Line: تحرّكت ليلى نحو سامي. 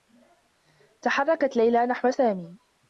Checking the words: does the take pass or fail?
pass